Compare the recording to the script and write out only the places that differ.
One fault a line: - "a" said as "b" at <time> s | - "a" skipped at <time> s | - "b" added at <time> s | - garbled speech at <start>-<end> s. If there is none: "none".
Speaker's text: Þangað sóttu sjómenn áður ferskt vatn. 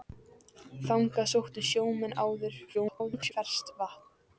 - garbled speech at 2.7-3.3 s